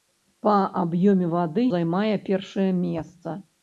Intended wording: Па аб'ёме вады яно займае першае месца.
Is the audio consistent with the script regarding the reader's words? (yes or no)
no